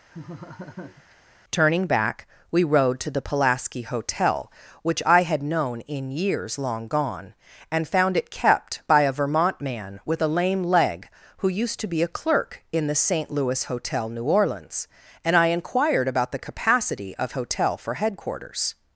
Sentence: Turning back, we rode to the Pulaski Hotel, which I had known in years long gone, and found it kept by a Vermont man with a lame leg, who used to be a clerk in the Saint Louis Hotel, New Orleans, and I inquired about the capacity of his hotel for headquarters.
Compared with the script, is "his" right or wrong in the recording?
wrong